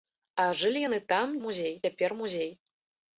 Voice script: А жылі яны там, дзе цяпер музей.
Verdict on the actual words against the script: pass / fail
fail